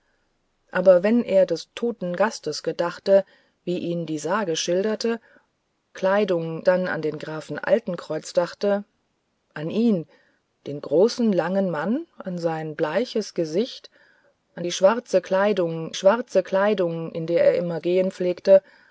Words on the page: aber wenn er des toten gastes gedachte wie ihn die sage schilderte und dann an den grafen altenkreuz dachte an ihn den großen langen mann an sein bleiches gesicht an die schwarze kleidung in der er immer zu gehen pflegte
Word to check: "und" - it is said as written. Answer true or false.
false